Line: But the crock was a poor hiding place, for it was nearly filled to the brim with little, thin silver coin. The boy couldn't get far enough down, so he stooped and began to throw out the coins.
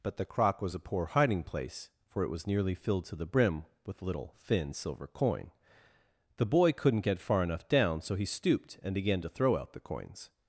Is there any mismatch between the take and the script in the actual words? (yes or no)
no